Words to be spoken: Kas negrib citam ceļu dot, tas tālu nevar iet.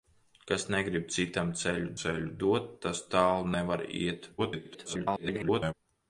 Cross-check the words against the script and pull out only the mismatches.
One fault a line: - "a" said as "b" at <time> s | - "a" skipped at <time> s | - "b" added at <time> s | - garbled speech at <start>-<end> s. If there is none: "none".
- "ceļu" added at 2.0 s
- garbled speech at 4.4-5.7 s